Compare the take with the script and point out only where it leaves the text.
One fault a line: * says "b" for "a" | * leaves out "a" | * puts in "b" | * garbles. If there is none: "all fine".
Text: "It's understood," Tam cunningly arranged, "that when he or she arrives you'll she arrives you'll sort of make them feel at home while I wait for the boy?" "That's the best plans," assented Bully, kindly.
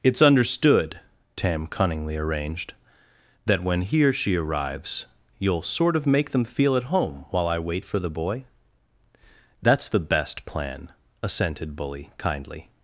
* leaves out "she arrives you'll"
* says "plan" for "plans"